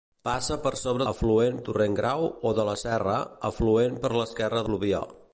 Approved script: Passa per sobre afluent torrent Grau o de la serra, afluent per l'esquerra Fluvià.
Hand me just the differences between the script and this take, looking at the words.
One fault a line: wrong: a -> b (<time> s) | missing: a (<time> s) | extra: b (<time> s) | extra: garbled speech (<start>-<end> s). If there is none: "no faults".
no faults